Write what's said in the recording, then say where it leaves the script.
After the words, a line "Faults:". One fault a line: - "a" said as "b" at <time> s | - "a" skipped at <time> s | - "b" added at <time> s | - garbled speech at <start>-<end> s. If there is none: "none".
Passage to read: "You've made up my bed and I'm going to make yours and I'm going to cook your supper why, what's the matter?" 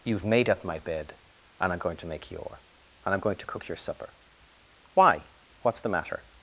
"You've made up my bed and I'm going to make your and I'm going to cook your supper why, what's the matter?"
Faults:
- "yours" said as "your" at 2.3 s